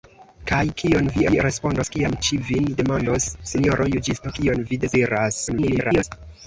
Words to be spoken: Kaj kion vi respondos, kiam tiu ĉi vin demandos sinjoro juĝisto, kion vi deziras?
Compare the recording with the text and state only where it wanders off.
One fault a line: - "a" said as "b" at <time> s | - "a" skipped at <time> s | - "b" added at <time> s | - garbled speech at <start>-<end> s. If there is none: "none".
- "vi" added at 1.3 s
- "tiu" skipped at 2.2 s
- garbled speech at 5.5-6.0 s